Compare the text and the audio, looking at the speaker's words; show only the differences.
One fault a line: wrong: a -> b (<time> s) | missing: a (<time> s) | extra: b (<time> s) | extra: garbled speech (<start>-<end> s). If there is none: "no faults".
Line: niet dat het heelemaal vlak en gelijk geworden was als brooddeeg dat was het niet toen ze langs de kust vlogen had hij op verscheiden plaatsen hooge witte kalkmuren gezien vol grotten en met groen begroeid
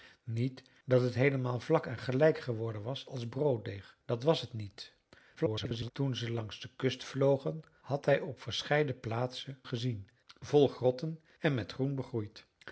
extra: garbled speech (5.4-5.9 s)
missing: hooge witte kalkmuren (9.6 s)